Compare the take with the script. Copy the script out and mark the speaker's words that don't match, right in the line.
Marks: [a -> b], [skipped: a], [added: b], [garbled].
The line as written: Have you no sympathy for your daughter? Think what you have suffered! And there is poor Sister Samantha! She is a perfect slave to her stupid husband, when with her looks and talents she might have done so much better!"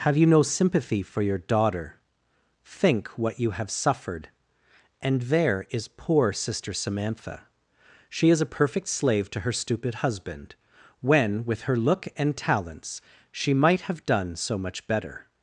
Have you no sympathy for your daughter? Think what you have suffered! And there is poor Sister Samantha! She is a perfect slave to her stupid husband, when with her [looks -> look] and talents she might have done so much better!"